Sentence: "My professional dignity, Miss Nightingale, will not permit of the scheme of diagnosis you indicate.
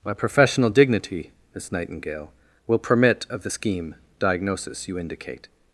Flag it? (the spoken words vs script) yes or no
yes